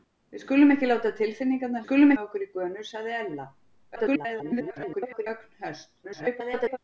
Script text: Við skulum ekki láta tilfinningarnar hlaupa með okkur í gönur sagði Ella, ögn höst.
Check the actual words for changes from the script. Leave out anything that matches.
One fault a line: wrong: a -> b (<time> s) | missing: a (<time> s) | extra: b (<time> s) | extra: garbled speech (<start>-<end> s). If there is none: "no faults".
wrong: hlaupa -> skulum (1.8 s)
extra: garbled speech (4.0-5.3 s)
extra: garbled speech (6.0-6.8 s)